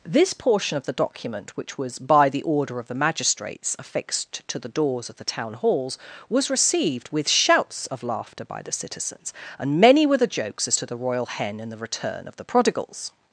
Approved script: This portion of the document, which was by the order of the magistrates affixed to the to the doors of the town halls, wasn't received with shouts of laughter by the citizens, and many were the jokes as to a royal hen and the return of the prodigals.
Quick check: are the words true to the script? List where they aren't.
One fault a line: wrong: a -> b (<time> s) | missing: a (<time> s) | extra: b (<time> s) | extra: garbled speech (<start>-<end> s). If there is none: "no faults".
missing: to the (4.7 s)
wrong: wasn't -> was (6.3 s)
wrong: a -> the (10.8 s)